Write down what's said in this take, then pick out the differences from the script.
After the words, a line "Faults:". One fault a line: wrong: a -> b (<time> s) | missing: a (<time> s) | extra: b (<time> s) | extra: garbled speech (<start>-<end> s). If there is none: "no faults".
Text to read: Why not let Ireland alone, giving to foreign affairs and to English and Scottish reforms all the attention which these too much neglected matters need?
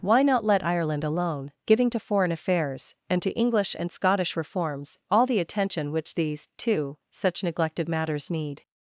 Why not let Ireland alone, giving to foreign affairs and to English and Scottish reforms all the attention which these too such neglected matters need?
Faults:
wrong: much -> such (7.1 s)